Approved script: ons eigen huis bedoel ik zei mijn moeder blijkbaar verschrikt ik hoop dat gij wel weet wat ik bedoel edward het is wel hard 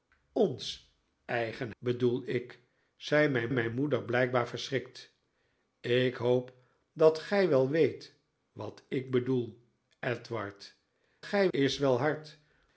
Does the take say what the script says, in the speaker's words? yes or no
no